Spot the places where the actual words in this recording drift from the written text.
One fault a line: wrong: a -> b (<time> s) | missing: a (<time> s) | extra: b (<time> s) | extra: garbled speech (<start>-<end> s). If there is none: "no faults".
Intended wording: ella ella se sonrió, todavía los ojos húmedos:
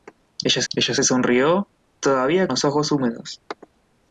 no faults